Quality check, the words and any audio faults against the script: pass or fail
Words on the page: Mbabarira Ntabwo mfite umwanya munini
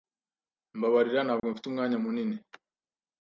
fail